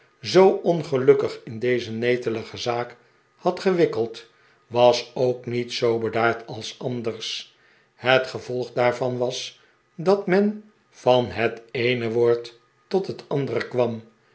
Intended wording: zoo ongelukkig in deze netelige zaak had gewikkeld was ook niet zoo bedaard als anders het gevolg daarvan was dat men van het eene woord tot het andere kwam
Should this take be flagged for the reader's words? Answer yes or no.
no